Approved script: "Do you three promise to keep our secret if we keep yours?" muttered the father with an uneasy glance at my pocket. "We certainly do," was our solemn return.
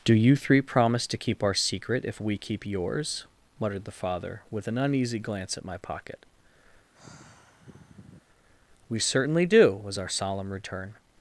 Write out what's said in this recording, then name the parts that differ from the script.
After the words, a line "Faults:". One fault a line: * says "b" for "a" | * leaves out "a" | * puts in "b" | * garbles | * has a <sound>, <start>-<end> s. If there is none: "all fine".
"Do you three promise to keep our secret if we keep yours?" muttered the father with an uneasy glance at my pocket. "We certainly do," was our solemn return.
Faults:
* has a sigh, 6.9-8.2 s